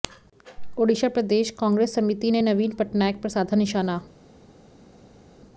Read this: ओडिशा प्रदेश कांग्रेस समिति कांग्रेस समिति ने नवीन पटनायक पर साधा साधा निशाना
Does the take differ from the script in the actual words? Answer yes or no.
yes